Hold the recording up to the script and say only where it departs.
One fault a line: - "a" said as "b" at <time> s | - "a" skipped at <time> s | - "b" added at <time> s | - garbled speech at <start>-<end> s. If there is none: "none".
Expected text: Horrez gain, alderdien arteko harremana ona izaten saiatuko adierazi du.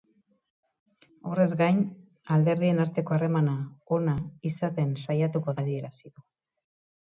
none